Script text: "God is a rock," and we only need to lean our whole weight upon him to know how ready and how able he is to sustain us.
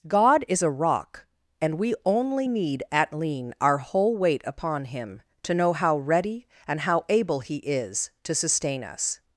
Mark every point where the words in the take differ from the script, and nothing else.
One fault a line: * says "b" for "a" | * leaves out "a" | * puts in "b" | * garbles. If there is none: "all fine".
* says "at" for "to"